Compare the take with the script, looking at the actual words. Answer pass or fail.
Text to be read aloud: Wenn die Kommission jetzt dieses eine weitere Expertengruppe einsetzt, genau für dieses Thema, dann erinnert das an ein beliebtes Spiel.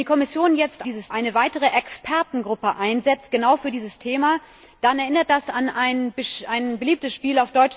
pass